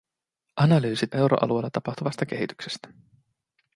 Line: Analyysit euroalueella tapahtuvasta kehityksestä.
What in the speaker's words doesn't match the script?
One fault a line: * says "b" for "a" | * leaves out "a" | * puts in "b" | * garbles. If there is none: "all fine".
all fine